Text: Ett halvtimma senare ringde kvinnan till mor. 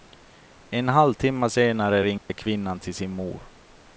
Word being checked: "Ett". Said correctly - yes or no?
no